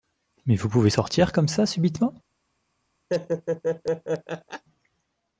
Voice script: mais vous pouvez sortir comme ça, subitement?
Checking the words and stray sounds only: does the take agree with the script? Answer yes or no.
no